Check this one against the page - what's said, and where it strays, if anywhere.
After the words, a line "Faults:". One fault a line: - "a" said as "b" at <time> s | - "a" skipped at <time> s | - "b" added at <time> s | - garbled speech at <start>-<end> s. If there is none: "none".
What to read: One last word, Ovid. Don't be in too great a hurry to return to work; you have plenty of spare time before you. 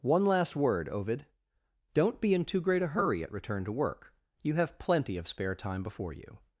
One last word, Ovid. Don't be in too great a hurry at return to work; you have plenty of spare time before you.
Faults:
- "to" said as "at" at 3.2 s